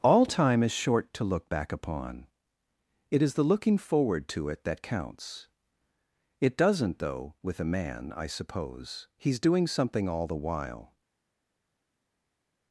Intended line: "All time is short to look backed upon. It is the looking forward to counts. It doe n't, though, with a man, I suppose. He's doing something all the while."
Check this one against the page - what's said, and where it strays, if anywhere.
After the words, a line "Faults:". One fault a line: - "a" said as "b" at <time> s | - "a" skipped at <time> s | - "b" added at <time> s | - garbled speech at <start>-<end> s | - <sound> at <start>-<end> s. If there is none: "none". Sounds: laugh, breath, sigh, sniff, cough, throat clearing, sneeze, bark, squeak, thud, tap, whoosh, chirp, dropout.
"All time is short to look back upon. It is the looking forward to it that counts. It does n't, though, with a man, I suppose. He's doing something all the while."
Faults:
- "backed" said as "back" at 1.5 s
- "it that" added at 4.5 s
- "doe" said as "does" at 6.6 s